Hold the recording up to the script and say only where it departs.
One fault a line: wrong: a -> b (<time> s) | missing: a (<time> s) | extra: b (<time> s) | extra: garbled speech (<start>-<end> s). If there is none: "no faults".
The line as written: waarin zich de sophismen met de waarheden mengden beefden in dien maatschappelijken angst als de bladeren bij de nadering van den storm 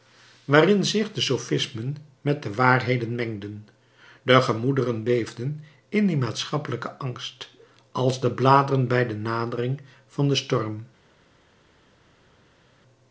extra: de gemoederen (4.2 s)